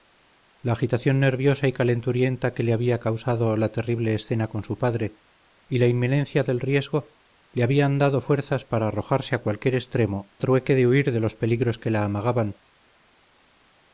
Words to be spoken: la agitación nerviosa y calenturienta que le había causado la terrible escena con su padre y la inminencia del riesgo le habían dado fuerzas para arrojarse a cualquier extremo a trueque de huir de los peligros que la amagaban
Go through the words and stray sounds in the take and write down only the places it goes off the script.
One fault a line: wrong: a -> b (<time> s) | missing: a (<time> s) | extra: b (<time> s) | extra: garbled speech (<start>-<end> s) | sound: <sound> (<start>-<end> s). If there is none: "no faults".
missing: a (10.3 s)